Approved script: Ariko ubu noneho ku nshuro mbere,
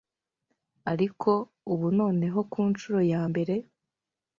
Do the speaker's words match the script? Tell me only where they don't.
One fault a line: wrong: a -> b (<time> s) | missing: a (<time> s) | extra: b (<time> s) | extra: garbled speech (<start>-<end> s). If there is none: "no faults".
extra: ya (3.1 s)